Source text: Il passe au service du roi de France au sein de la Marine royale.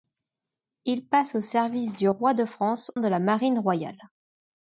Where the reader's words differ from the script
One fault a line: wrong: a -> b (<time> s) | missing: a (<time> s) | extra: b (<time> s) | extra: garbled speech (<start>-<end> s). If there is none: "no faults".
missing: au sein (2.9 s)